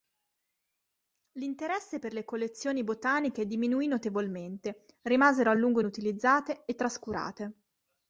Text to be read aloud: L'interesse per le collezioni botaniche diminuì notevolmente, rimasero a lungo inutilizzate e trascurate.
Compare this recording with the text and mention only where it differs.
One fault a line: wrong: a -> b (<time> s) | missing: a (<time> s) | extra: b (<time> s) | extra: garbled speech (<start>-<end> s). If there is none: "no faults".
no faults